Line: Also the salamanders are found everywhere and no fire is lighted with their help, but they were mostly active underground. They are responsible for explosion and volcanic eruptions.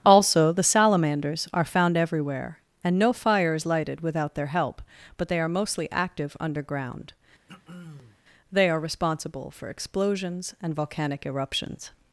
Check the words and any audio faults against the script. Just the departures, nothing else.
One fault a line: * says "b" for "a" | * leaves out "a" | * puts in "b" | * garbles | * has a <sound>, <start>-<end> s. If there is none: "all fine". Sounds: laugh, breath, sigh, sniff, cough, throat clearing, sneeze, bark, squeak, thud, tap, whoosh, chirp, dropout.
* says "without" for "with"
* says "are" for "were"
* has a throat clearing, 7.5-8.2 s
* says "explosions" for "explosion"